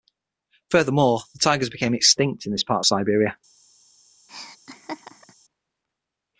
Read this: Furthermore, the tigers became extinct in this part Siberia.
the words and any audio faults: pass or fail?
fail